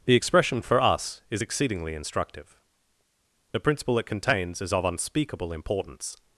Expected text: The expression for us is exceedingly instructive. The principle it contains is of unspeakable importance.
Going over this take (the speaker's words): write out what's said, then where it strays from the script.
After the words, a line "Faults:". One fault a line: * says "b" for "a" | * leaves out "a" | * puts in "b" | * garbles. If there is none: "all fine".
The expression for us is exceedingly instructive. The principle it contains is of unspeakable importance.
Faults:
all fine